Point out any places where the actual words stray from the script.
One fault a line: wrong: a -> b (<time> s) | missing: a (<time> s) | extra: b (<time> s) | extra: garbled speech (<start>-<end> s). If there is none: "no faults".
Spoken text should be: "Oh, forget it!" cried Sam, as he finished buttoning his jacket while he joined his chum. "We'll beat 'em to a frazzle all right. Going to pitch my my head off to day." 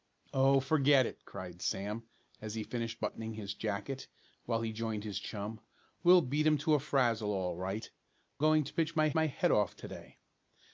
no faults